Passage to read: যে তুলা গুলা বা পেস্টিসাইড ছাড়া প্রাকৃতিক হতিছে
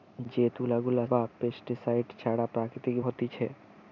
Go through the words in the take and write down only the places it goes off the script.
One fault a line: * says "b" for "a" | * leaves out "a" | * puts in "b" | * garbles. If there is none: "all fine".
all fine